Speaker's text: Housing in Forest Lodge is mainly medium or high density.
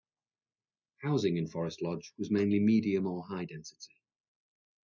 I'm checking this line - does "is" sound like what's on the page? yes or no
no